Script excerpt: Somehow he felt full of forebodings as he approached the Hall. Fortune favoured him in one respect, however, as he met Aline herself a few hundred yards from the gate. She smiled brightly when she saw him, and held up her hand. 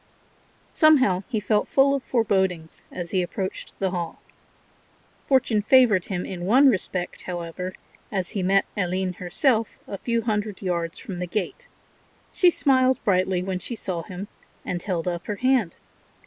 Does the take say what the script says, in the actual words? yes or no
yes